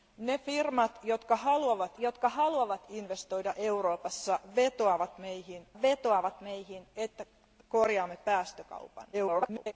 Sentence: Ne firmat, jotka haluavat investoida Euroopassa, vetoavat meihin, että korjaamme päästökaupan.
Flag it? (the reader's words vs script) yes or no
yes